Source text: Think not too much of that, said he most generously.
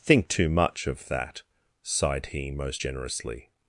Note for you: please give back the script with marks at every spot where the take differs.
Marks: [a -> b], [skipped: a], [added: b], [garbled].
Think [skipped: not] too much of that, [said -> sighed] he most generously.